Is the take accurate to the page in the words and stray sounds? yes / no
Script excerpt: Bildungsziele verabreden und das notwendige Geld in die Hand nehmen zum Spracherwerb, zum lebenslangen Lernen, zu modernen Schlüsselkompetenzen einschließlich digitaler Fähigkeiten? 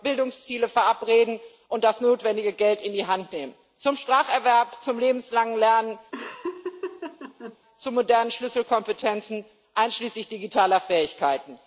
no